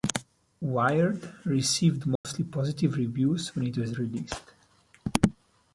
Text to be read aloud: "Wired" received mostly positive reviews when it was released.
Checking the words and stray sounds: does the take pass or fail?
fail